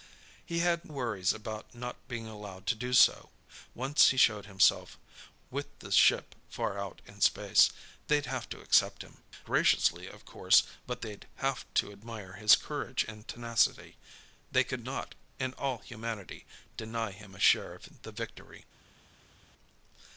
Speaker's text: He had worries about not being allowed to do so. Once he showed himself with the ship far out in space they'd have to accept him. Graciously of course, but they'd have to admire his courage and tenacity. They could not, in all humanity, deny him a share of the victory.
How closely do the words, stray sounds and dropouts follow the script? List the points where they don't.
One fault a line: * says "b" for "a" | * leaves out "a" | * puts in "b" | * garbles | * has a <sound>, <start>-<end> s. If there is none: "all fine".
all fine